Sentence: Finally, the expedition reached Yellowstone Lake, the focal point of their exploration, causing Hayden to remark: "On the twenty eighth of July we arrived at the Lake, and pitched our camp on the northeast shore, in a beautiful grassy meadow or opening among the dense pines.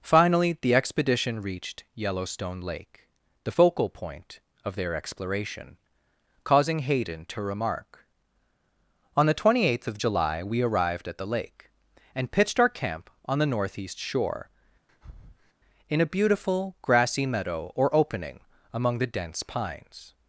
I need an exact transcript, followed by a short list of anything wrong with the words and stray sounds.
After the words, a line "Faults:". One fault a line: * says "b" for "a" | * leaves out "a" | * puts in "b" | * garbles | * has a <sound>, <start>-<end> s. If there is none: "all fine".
Finally, the expedition reached Yellowstone Lake, the focal point of their exploration, causing Hayden to remark: "On the twenty eighth of July we arrived at the Lake, and pitched our camp on the northeast shore, in a beautiful grassy meadow or opening among the dense pines.
Faults:
* has a breath, 14.9-15.5 s